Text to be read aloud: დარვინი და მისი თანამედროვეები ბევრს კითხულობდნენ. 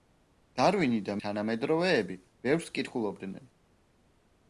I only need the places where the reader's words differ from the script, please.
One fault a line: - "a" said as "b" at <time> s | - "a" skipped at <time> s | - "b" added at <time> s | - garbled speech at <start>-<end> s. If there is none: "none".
- "მისი" skipped at 1.1 s